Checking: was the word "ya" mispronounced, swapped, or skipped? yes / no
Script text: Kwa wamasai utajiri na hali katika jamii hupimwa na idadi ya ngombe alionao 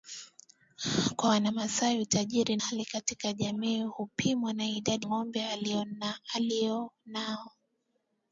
yes